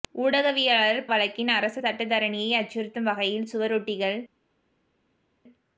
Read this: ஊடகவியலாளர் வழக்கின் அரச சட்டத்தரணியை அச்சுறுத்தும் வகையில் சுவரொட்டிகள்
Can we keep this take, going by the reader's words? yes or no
yes